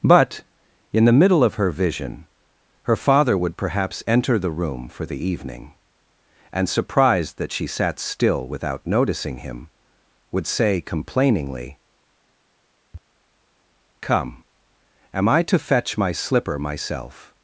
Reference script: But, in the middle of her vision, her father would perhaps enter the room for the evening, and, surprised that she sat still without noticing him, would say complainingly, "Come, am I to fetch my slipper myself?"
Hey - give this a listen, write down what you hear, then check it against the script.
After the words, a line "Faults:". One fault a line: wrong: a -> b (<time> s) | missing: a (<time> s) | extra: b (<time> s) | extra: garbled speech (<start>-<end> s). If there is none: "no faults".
But, in the middle of her vision, her father would perhaps enter the room for the evening, and, surprised that she sat still without noticing him, would say complainingly, "Come, am I to fetch my slipper myself?"
Faults:
no faults